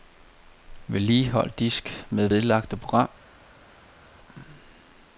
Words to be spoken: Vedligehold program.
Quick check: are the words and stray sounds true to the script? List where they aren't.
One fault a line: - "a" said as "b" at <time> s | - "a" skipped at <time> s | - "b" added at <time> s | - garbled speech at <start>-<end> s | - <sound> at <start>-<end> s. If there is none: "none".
- "disk med vedlagte" added at 1.6 s